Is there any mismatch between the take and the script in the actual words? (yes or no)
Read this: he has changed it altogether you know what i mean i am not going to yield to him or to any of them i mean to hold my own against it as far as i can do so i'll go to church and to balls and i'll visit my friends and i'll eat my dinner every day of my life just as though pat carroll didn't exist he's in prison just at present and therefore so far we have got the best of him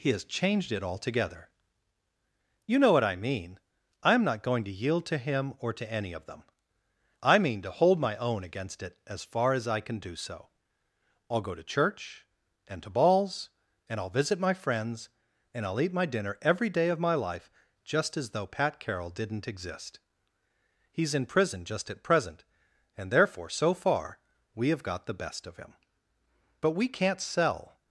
yes